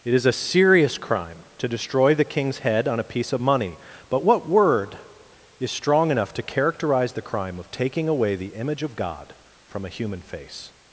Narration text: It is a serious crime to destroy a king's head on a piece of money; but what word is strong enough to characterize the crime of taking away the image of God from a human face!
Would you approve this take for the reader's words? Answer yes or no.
no